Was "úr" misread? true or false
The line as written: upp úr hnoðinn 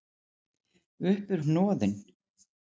false